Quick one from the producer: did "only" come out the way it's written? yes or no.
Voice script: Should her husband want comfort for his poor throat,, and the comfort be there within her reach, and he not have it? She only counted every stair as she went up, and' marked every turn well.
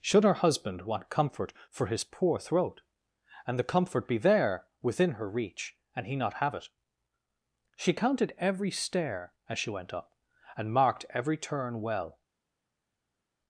no